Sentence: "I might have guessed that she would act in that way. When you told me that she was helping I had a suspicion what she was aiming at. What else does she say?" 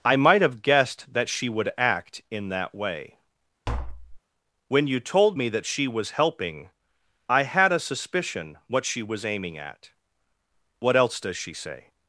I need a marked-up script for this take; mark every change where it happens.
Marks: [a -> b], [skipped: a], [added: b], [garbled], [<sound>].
"I might have guessed that she would act in that way. [tap] When you told me that she was helping I had a suspicion what she was aiming at. What else does she say?"